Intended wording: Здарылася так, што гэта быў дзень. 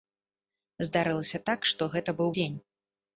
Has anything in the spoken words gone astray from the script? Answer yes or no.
no